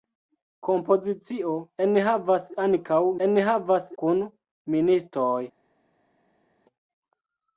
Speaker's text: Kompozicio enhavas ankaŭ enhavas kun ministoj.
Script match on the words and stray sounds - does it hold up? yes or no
yes